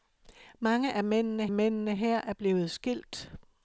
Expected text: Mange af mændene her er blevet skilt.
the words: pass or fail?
fail